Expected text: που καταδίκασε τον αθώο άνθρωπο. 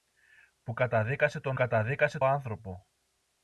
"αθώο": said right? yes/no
no